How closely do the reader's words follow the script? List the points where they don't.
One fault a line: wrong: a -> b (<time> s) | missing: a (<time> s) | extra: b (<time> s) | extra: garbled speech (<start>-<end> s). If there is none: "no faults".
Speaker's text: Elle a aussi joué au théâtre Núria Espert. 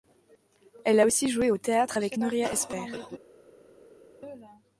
extra: avec (2.0 s)